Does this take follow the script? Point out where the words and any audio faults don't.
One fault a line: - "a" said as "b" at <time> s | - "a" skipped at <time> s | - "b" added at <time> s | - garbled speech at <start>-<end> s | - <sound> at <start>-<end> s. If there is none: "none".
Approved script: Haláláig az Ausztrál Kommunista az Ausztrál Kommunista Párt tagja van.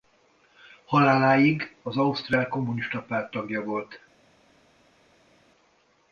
- "az Ausztrál Kommunista" skipped at 3.0 s
- "van" said as "volt" at 3.6 s